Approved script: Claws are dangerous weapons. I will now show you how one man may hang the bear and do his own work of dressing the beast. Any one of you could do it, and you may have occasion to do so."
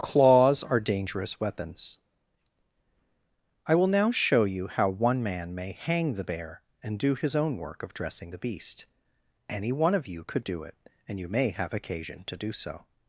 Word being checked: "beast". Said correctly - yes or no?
yes